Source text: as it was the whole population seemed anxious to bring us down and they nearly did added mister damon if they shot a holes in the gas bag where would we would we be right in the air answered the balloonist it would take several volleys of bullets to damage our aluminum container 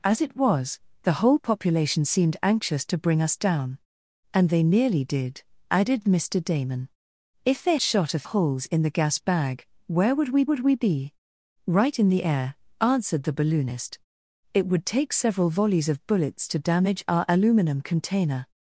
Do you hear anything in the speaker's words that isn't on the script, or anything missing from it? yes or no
no